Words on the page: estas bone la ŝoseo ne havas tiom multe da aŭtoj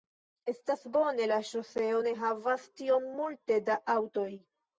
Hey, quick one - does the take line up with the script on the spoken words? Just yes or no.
yes